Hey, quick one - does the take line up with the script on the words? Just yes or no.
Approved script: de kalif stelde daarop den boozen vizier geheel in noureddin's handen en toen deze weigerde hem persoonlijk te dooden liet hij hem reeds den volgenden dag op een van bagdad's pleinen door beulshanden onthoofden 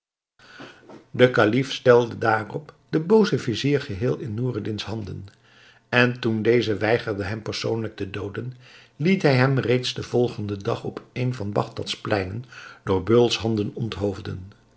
yes